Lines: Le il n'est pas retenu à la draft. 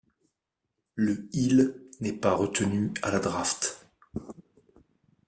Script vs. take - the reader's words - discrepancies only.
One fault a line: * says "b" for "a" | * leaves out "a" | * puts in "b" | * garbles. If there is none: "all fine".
all fine